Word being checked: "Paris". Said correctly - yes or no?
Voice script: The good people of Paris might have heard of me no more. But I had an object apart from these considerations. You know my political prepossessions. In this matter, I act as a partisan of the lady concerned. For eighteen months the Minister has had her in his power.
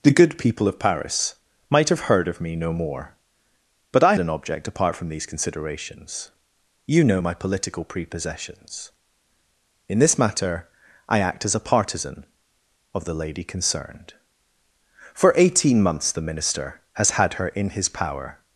yes